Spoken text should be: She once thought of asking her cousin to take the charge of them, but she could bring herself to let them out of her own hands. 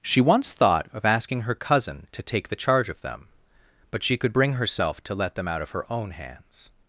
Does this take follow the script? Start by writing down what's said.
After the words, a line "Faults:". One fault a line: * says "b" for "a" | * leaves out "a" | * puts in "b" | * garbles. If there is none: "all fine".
She once thought of asking her cousin to take the charge of them, but she could bring herself to let them out of her own hands.
Faults:
all fine